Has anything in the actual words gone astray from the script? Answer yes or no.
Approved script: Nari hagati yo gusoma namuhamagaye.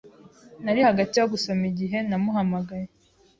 yes